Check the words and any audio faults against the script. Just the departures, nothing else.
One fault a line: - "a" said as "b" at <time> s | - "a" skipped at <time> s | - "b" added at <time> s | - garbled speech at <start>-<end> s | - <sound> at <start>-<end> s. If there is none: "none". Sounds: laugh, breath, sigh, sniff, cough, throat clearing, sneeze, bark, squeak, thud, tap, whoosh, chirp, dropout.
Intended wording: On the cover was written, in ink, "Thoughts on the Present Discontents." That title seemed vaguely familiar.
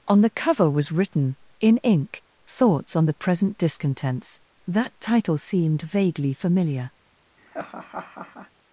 - laugh at 7.4-8.5 s